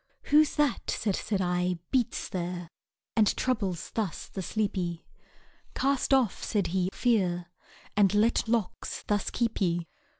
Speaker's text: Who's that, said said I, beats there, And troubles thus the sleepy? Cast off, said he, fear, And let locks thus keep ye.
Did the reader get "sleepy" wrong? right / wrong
right